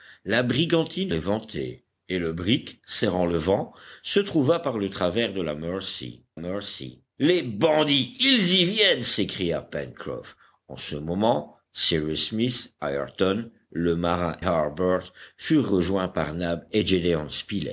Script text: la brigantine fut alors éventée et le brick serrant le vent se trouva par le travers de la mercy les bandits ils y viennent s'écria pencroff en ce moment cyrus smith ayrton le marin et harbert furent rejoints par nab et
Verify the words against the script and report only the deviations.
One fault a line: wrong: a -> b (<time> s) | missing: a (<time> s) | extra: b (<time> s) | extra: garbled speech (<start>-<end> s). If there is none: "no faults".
missing: fut alors (1.1 s)
extra: mercy (6.4 s)
missing: et (14.4 s)